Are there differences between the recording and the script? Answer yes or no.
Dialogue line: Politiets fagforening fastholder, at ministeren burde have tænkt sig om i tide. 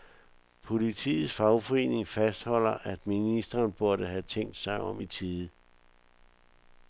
no